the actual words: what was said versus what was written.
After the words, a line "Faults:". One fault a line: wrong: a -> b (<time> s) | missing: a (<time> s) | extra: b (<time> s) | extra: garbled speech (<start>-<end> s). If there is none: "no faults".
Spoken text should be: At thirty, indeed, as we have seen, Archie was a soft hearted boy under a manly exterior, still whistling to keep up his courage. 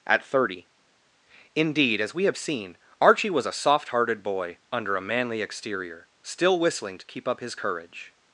At thirty, indeed, as we have seen, Archie was a soft hearted boy under a manly exterior, still whistling to keep up his courage.
Faults:
no faults